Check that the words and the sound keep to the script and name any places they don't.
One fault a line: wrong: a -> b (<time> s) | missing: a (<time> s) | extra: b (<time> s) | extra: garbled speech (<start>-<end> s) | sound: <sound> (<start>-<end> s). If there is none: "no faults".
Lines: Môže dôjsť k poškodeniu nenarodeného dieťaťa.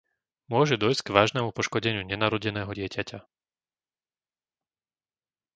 extra: vážnemu (1.1 s)